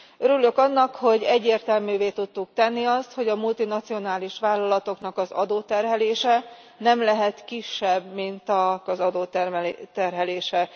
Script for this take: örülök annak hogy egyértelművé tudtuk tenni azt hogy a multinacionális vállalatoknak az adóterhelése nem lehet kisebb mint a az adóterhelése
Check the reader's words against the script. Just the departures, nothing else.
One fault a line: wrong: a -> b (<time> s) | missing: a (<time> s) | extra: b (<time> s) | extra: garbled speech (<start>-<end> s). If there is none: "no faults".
no faults